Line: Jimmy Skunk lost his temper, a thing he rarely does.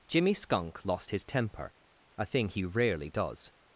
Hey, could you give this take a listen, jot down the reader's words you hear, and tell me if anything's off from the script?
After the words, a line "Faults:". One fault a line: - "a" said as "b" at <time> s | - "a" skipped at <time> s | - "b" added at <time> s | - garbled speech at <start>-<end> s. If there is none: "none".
Jimmy Skunk lost his temper, a thing he rarely does.
Faults:
none